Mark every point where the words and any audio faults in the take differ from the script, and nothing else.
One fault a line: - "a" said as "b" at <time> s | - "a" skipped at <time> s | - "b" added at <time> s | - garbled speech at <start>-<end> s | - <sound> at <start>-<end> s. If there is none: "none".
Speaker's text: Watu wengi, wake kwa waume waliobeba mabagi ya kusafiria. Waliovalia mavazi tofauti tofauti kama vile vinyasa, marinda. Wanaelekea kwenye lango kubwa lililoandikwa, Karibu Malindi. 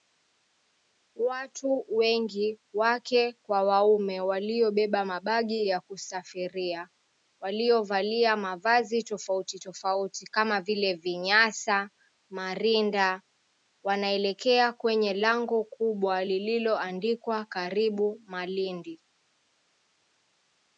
none